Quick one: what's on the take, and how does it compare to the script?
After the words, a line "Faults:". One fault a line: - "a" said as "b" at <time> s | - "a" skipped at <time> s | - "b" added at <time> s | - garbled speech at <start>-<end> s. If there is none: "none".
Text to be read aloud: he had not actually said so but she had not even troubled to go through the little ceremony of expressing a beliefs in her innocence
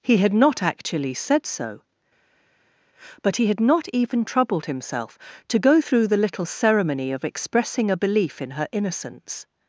he had not actually said so but he had not even troubled himself to go through the little ceremony of expressing a belief in her innocence
Faults:
- "she" said as "he" at 3.4 s
- "himself" added at 4.6 s
- "beliefs" said as "belief" at 8.0 s